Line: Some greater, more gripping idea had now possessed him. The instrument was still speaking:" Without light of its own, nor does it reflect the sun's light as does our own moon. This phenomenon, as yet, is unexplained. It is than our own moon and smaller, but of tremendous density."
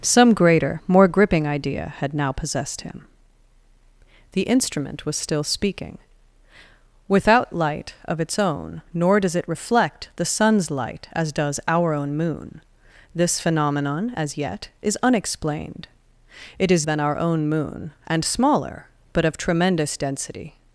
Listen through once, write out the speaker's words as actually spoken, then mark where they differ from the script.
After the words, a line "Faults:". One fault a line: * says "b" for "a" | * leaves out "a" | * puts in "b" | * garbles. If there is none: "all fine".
Some greater, more gripping idea had now possessed him. The instrument was still speaking:" Without light of its own, nor does it reflect the sun's light as does our own moon. This phenomenon, as yet, is unexplained. It is than our own moon and smaller, but of tremendous density."
Faults:
all fine